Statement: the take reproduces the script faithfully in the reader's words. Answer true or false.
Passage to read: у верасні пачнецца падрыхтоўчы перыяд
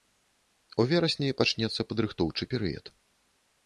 true